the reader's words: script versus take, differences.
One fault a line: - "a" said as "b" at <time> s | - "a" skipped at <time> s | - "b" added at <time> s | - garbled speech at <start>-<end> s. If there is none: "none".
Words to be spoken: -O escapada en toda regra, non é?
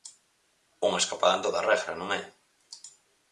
- "O" said as "Unha" at 0.8 s